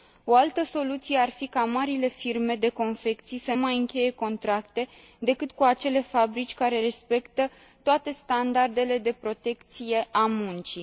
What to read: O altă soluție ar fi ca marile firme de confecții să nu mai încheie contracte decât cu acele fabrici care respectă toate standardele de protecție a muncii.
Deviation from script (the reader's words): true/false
true